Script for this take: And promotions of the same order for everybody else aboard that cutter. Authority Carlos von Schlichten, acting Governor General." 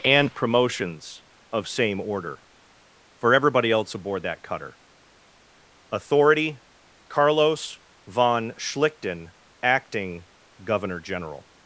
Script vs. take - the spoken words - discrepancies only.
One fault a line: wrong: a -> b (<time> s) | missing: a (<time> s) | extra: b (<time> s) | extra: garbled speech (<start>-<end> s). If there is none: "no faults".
missing: the (1.7 s)